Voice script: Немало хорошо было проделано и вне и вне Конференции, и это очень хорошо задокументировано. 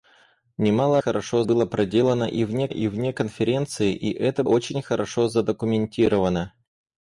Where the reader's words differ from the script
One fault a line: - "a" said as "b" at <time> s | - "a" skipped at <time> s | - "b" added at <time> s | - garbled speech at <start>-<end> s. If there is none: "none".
none